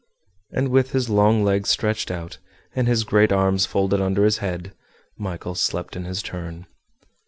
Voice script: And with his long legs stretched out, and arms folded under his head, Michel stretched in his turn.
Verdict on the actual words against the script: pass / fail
fail